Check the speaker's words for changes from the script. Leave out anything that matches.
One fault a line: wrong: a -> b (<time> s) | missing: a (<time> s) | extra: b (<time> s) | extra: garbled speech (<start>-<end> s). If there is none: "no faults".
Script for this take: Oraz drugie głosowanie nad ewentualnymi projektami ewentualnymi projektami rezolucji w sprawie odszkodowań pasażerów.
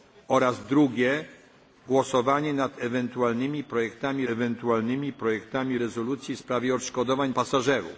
no faults